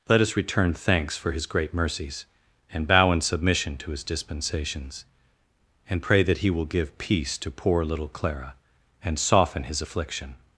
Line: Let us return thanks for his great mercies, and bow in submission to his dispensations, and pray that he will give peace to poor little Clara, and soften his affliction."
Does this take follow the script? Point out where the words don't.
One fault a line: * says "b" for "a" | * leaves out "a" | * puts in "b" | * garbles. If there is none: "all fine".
all fine